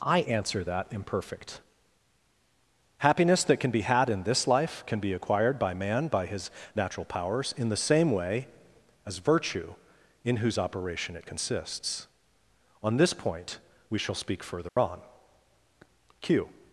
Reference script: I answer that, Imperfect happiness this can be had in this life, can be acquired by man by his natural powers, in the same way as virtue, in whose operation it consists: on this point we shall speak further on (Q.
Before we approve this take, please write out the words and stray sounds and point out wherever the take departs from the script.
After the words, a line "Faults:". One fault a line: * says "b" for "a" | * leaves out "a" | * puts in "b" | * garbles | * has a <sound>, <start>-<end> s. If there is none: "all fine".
I answer that, Imperfect happiness that can be had in this life, can be acquired by man by his natural powers, in the same way as virtue, in whose operation it consists: on this point we shall speak further on (Q.
Faults:
* says "that" for "this"
* has a dropout, 14.7-14.8 s